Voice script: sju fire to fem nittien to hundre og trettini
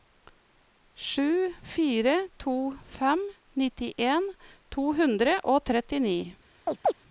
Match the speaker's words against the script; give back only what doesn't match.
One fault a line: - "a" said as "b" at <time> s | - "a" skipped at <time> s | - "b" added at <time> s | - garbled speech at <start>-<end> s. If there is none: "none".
none